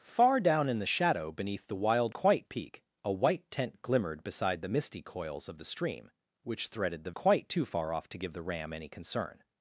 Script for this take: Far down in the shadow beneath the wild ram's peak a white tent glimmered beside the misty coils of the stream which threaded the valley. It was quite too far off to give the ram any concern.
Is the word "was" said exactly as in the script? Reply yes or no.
no